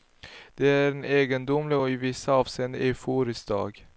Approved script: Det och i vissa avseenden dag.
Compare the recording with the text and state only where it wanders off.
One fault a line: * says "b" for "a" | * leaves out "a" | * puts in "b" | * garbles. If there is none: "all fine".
* puts in "är en egendomlig"
* puts in "euforisk"